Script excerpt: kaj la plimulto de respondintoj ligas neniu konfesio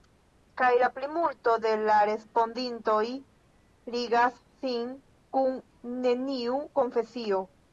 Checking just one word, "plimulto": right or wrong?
right